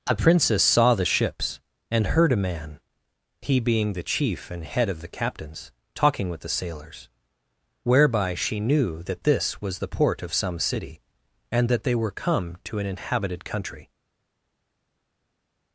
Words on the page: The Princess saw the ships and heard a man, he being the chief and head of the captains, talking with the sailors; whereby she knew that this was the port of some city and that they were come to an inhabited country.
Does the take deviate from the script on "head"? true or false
false